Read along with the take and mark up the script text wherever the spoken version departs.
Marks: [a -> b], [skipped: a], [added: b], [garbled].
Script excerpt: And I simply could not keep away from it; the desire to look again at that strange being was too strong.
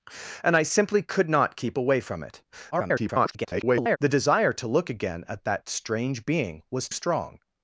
And I simply could not keep away from it; [garbled] the desire to look again at that strange being was [skipped: too] strong.